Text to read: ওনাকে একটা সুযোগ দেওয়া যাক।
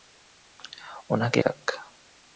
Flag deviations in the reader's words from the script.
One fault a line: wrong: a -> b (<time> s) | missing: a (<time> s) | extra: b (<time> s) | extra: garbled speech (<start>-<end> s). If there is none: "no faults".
missing: একটা সুযোগ দেওয়া (1.4 s)